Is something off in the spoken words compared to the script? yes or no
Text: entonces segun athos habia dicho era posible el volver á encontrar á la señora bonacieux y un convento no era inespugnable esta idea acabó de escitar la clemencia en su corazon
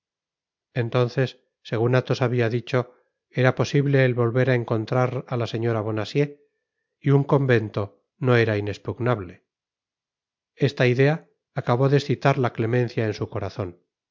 no